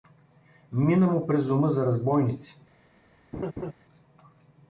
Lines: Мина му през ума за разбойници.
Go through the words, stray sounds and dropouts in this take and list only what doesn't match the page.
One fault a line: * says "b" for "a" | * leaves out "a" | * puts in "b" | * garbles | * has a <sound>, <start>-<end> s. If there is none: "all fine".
* has a laugh, 3.3-3.7 s